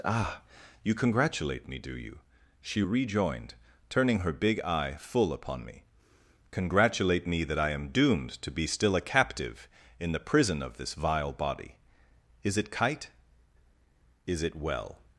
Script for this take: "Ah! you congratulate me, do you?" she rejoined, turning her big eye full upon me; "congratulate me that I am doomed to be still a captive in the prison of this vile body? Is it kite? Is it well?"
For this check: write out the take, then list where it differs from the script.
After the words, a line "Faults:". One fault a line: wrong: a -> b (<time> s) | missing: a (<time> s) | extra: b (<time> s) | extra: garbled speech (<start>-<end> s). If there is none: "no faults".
"Ah! you congratulate me, do you?" she rejoined, turning her big eye full upon me; "congratulate me that I am doomed to be still a captive in the prison of this vile body? Is it kite? Is it well?"
Faults:
no faults